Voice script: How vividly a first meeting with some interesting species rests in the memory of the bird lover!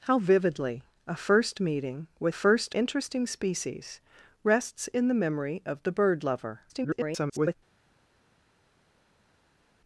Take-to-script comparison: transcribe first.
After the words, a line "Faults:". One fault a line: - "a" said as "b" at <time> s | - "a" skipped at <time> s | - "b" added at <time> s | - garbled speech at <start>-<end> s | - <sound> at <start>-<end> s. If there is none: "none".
How vividly a first meeting with first interesting species rests in the memory of the bird lover! [garbled]
Faults:
- "some" said as "first" at 2.3 s
- garbled speech at 6.7-7.5 s